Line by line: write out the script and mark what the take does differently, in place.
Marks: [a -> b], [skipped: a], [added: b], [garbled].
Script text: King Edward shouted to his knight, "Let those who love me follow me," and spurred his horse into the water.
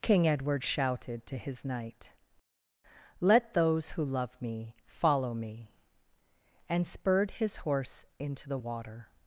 King Edward shouted to his knight, "Let those who love me follow me," and spurred his horse into the water.